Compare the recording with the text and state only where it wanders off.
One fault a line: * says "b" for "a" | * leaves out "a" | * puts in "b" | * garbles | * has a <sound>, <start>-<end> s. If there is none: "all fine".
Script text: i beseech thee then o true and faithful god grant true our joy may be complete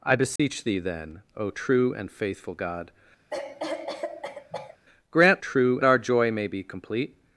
* has a dropout, 0.4-0.4 s
* has a cough, 3.3-4.8 s